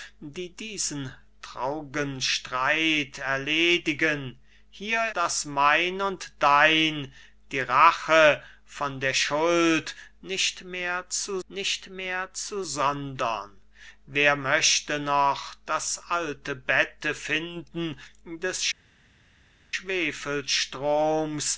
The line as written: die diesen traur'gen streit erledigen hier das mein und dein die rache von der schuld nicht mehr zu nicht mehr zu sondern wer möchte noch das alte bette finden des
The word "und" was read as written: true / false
true